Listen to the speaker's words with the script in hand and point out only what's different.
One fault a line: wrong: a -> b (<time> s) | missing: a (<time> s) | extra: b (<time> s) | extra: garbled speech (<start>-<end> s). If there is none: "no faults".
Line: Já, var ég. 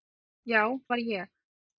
no faults